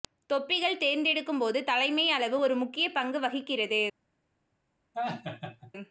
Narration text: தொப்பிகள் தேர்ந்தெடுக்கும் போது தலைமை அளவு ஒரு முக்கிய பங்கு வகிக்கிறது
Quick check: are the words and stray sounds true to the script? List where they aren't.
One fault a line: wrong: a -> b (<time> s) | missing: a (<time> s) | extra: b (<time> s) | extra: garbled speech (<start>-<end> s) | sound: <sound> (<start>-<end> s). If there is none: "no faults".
sound: laugh (4.9-5.7 s)